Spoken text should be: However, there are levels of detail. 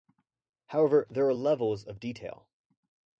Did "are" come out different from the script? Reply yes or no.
no